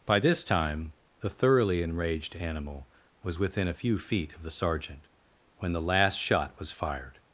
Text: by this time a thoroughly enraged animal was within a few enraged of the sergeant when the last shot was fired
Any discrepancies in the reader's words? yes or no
yes